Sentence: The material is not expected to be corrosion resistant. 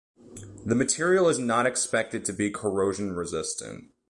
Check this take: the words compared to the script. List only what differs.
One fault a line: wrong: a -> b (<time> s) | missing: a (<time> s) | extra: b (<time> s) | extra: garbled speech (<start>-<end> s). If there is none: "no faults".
no faults